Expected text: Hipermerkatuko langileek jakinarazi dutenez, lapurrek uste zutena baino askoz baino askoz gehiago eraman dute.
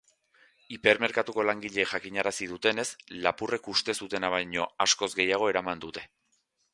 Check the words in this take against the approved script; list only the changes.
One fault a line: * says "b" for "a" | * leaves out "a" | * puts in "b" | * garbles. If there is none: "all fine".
* leaves out "baino askoz"